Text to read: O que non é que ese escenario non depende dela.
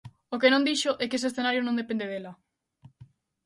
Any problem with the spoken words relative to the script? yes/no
yes